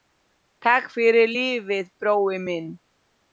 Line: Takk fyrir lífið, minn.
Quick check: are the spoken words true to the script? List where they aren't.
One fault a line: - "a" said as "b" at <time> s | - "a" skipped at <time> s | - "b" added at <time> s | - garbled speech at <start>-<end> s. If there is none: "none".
- "brói" added at 2.0 s